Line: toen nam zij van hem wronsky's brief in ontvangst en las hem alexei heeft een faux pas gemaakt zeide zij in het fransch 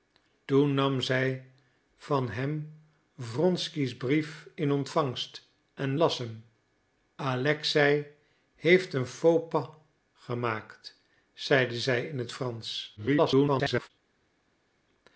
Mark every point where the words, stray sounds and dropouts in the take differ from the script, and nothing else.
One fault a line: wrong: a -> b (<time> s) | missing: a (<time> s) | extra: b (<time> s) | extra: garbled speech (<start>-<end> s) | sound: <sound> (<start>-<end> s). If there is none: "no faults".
extra: garbled speech (13.0-13.9 s)